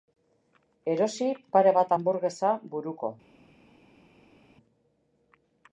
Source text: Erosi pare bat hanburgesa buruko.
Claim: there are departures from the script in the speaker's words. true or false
false